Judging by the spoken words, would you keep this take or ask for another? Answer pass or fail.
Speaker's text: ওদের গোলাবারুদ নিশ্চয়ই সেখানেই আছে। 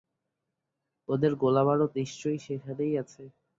pass